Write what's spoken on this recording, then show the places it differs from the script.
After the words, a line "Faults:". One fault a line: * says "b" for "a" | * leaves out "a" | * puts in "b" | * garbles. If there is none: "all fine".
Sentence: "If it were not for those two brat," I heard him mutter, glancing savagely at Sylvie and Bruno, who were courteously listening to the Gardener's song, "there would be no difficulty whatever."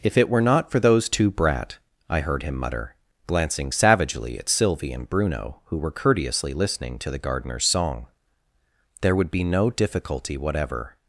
"If it were not for those two brat," I heard him mutter, glancing savagely at Sylvie and Bruno, who were courteously listening to the Gardener's song, "there would be no difficulty whatever."
Faults:
all fine